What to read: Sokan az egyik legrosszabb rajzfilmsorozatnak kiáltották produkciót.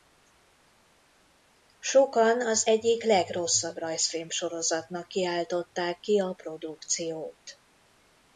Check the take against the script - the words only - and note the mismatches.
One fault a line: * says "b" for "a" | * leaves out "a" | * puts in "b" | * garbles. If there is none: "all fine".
* puts in "ki a"